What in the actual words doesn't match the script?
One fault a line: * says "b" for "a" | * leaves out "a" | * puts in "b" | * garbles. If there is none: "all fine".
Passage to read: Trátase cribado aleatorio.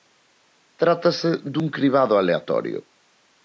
* puts in "dun"